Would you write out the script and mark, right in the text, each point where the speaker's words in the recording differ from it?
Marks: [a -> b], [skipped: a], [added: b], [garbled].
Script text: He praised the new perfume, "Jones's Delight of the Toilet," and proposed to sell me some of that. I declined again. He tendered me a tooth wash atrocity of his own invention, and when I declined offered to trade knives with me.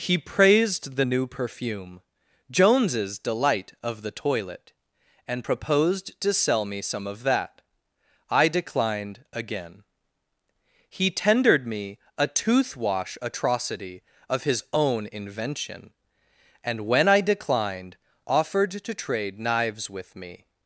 He praised the new perfume, "Jones's Delight of the Toilet," and proposed to sell me some of that. I declined again. He tendered me a tooth wash atrocity of his own invention, and when I declined offered to trade knives with me.